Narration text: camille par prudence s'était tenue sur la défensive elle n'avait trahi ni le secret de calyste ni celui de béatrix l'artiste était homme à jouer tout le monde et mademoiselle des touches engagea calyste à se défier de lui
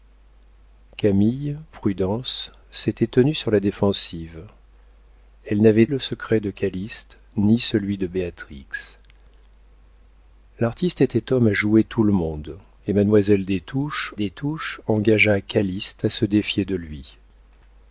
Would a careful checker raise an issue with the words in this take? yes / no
yes